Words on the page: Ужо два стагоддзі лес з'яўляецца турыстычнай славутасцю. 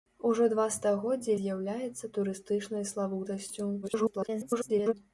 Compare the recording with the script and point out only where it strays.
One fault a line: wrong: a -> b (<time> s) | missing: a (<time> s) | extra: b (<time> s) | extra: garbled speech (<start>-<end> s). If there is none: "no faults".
missing: лес (1.4 s)
extra: garbled speech (3.8-4.9 s)